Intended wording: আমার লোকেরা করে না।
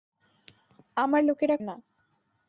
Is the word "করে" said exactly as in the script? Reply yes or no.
no